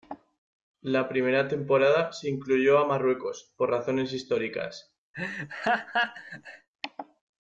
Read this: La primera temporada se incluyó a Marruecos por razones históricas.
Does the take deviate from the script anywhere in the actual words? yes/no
no